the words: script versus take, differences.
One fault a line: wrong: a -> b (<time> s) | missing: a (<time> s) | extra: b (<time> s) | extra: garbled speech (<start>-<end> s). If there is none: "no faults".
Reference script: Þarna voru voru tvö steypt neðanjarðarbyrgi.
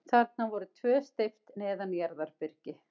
missing: voru (0.7 s)